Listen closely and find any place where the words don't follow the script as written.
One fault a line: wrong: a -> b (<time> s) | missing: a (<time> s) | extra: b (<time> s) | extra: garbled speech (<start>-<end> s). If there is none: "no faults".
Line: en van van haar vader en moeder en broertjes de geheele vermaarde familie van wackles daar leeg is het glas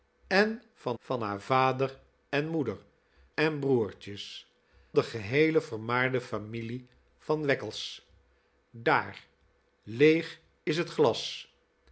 no faults